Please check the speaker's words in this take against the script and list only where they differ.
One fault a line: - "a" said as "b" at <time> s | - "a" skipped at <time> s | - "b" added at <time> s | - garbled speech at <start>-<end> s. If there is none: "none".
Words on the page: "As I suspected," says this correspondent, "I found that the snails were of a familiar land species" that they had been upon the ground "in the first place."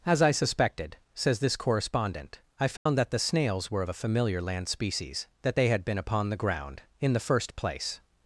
none